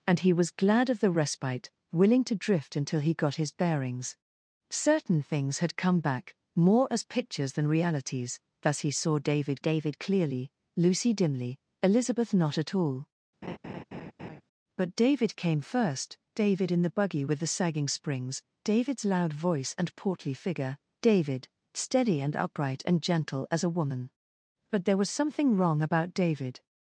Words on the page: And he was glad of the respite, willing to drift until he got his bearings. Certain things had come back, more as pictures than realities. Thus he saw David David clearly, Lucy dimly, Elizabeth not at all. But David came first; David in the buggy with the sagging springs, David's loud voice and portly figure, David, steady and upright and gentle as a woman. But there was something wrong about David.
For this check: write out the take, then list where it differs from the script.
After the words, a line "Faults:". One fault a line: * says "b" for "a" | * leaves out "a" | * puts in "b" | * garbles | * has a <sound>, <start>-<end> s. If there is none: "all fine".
And he was glad of the respite, willing to drift until he got his bearings. Certain things had come back, more as pictures than realities. Thus he saw David David clearly, Lucy dimly, Elizabeth not at all. But David came first; David in the buggy with the sagging springs, David's loud voice and portly figure, David, steady and upright and gentle as a woman. But there was something wrong about David.
Faults:
* has a laugh, 13.4-14.4 s